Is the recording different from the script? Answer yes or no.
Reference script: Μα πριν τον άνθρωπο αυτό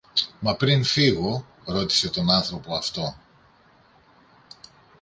yes